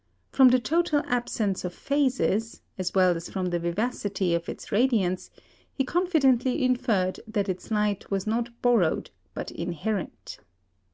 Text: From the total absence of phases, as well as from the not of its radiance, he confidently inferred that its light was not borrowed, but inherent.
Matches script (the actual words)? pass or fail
fail